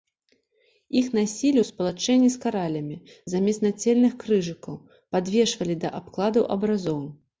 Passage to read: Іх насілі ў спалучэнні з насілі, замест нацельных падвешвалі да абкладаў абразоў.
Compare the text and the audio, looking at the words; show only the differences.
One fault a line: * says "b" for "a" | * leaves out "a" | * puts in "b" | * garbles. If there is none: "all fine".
* says "каралямі" for "насілі"
* puts in "крыжыкаў"